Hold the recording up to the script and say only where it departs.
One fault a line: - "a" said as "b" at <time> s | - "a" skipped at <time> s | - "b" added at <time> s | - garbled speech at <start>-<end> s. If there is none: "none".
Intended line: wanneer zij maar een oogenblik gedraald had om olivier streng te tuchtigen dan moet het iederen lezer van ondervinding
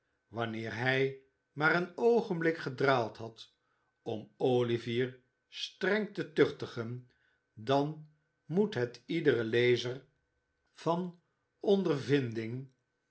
- "zij" said as "hij" at 0.8 s